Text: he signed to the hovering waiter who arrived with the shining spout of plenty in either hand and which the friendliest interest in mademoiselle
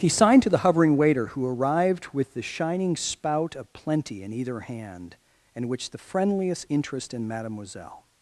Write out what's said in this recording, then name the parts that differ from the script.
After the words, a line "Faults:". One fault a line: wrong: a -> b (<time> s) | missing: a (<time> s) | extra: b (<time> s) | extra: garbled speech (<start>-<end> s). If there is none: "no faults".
he signed to the hovering waiter who arrived with the shining spout of plenty in either hand and which the friendliest interest in mademoiselle
Faults:
no faults